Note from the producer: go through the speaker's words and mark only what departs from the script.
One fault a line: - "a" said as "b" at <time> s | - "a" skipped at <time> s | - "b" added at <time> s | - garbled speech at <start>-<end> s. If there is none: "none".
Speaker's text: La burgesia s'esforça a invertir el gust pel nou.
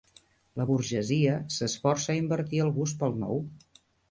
none